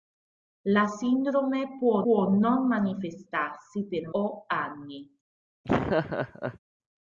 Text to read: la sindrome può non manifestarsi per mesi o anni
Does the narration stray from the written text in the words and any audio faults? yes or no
yes